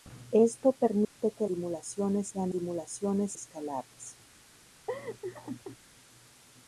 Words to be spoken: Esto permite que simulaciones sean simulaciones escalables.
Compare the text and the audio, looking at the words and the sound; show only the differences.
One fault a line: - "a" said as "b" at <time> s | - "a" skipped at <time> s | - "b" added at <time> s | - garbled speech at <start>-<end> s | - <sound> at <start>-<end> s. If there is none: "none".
- dropout at 1.0-1.2 s
- laugh at 4.9-5.8 s